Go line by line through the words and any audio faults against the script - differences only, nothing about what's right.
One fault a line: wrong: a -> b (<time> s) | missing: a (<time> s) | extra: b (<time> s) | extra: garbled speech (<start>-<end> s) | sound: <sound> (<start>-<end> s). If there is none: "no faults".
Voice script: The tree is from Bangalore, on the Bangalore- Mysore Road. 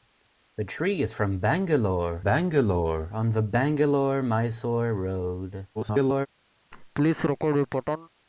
extra: Bangalore (2.2 s)
extra: garbled speech (5.8-6.3 s)
sound: laugh (6.7-8.1 s)